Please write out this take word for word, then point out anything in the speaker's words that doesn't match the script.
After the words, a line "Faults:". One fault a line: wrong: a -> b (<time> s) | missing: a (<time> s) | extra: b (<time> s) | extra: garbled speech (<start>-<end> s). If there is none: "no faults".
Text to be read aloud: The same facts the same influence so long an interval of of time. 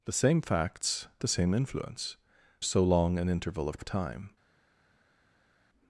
The same facts the same influence so long an interval of of time.
Faults:
no faults